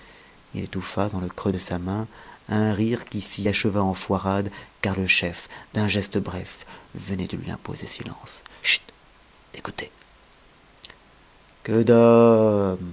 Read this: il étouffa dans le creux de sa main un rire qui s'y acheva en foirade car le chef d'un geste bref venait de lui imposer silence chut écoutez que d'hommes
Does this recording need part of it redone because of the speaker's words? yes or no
no